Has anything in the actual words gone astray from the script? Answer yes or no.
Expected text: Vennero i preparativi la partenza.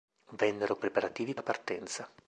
no